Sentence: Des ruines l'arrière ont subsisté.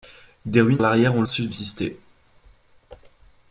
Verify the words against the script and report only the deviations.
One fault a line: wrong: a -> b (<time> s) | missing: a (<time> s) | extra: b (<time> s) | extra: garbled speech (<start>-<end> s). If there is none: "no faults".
no faults